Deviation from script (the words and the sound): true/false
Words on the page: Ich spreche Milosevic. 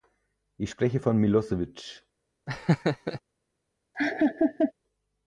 true